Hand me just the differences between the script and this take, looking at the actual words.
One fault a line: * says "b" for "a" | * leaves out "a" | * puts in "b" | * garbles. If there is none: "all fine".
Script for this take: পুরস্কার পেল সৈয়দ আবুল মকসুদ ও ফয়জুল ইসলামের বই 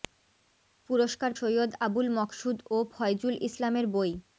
* leaves out "পেল"